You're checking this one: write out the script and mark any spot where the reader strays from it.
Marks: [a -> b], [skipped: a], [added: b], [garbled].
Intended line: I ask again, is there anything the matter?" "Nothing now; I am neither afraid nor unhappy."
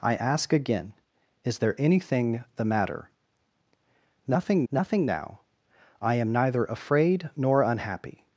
I ask again, is there anything the matter?" "Nothing [added: nothing] now; I am neither afraid nor unhappy."